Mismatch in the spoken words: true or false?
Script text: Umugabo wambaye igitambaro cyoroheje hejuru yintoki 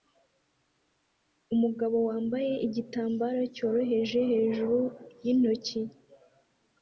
false